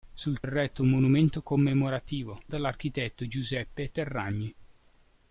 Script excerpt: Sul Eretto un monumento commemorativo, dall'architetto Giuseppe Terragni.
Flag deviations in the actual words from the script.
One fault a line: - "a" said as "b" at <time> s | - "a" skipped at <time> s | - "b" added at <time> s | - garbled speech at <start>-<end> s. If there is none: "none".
none